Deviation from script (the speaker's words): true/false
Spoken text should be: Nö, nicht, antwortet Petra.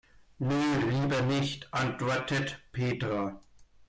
true